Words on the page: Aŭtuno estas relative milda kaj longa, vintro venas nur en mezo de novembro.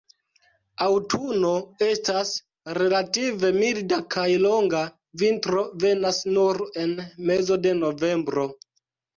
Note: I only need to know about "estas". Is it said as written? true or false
true